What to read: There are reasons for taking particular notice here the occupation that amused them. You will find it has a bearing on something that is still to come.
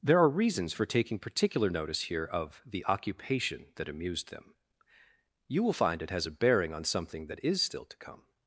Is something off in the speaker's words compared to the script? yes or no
yes